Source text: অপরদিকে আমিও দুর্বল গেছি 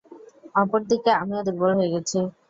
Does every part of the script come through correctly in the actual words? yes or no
no